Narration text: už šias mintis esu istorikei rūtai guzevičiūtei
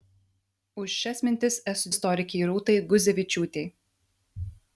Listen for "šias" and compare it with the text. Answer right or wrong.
right